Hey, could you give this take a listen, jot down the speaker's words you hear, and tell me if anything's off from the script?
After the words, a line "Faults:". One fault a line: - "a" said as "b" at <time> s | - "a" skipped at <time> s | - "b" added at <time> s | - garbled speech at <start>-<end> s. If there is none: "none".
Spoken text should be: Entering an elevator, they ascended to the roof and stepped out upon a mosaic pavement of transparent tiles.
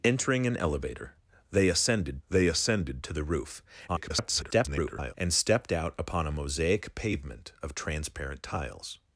Entering an elevator, they ascended they ascended to the roof [garbled] and stepped out upon a mosaic pavement of transparent tiles.
Faults:
- "they ascended" added at 2.3 s
- garbled speech at 3.9-5.1 s